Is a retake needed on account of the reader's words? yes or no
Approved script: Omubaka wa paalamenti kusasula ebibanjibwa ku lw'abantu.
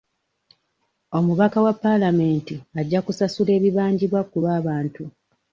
yes